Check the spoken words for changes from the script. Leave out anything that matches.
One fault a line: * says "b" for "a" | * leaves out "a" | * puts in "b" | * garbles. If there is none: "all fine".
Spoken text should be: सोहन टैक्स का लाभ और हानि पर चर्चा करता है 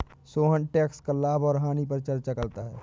all fine